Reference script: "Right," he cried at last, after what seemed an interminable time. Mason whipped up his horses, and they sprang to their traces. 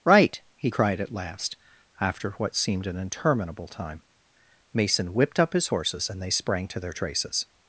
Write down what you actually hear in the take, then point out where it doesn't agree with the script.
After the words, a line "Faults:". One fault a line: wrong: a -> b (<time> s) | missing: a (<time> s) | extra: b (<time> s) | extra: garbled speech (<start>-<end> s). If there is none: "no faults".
"Right," he cried at last, after what seemed an interminable time. Mason whipped up his horses, and they sprang to their traces.
Faults:
no faults